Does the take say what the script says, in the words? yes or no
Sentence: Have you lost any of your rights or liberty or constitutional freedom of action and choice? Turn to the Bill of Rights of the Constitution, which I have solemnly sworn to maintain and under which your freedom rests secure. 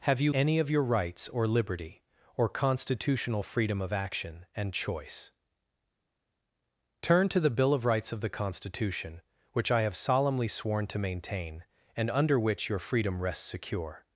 no